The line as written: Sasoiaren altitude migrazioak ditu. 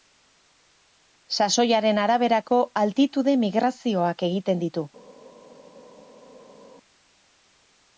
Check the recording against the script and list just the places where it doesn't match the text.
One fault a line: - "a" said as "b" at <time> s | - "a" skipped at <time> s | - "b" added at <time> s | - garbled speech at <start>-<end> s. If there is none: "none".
- "araberako" added at 2.0 s
- "egiten" added at 4.3 s